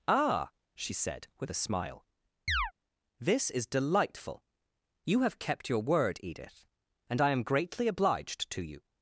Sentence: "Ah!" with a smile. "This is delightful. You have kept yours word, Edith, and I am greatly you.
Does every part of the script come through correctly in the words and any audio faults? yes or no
no